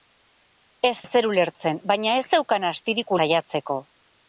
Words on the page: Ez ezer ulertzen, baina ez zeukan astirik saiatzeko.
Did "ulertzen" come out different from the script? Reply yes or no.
no